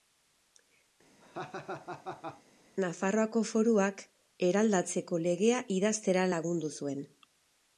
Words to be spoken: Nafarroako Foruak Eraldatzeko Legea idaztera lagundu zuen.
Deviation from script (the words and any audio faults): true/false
true